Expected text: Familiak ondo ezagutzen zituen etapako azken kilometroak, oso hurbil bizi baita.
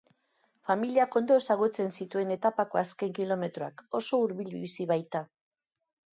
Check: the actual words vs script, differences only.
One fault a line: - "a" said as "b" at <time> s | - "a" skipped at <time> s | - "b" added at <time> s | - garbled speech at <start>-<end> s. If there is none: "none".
none